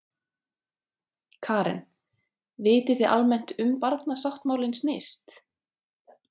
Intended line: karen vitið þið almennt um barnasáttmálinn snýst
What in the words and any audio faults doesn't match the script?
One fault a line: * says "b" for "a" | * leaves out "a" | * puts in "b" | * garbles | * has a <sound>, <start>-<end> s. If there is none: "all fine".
all fine